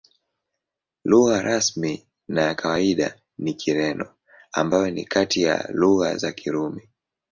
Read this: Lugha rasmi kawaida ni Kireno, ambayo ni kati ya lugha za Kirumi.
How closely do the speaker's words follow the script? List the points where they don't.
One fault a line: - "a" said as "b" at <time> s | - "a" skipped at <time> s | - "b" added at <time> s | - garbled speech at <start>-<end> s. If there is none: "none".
- "na ya" added at 2.3 s